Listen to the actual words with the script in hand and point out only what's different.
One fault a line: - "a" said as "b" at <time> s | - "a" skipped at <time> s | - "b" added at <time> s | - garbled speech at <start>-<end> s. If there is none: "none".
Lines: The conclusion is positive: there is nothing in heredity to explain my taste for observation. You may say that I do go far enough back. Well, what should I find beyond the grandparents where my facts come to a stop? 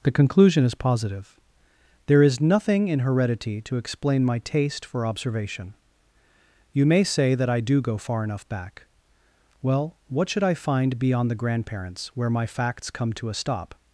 none